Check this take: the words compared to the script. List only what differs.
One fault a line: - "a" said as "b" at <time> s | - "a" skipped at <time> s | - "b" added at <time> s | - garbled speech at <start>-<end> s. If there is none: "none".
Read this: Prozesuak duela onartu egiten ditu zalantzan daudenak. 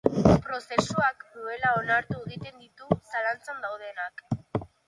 none